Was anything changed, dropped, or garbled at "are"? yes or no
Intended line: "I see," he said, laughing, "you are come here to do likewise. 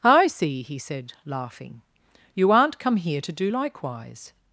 yes